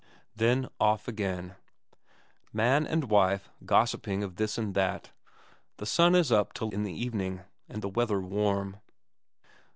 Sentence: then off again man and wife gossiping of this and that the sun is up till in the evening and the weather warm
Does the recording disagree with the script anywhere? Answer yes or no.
no